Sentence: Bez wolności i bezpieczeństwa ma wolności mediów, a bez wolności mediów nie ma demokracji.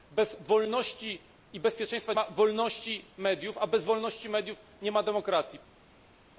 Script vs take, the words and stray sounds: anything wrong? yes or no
no